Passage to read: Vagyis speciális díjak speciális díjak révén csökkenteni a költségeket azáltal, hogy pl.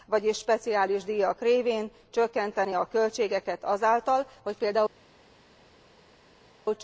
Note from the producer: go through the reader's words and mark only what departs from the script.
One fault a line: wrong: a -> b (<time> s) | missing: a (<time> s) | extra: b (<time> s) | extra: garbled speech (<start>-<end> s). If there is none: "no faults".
missing: speciális díjak (1.4 s)